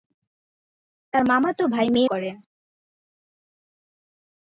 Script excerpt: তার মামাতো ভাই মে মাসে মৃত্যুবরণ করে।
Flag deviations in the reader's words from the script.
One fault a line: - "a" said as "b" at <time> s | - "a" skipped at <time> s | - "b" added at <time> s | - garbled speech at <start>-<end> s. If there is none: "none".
- "মাসে মৃত্যুবরণ" skipped at 2.0 s